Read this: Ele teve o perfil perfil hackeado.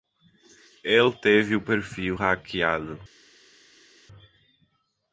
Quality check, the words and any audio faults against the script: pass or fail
fail